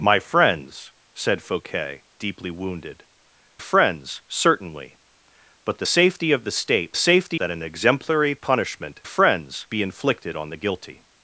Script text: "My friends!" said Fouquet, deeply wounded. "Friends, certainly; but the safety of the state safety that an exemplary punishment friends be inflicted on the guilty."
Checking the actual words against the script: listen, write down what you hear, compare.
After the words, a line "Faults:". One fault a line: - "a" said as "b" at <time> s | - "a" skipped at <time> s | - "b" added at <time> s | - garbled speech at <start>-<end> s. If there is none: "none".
"My friends!" said Fouquet, deeply wounded. "Friends, certainly; but the safety of the state safety that an exemplary punishment friends be inflicted on the guilty."
Faults:
none